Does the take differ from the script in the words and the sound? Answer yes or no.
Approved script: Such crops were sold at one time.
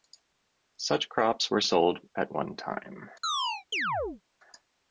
yes